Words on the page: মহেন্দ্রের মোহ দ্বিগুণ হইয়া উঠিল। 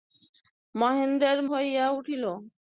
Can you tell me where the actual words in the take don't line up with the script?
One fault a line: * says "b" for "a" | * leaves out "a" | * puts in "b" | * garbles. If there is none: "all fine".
* leaves out "মোহ দ্বিগুণ"